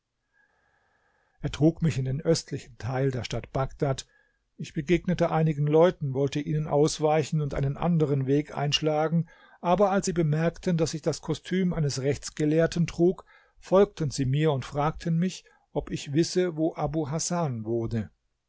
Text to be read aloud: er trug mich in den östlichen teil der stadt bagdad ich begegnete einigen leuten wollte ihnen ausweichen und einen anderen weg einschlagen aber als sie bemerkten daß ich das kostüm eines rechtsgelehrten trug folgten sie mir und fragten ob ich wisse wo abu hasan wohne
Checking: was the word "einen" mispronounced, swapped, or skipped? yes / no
no